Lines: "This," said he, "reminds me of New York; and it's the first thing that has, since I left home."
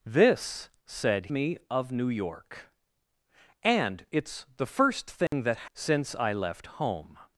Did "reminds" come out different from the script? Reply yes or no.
yes